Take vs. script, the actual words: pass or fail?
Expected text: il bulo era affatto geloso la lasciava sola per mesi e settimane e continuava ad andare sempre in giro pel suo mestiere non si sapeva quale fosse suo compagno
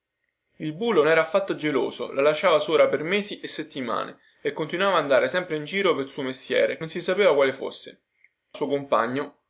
pass